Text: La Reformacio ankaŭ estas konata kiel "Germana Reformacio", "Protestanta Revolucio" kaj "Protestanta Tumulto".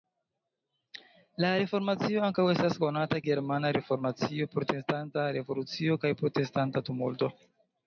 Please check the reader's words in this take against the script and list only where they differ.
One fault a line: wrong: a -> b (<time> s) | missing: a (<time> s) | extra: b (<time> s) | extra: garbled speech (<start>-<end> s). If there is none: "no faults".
missing: kiel (3.2 s)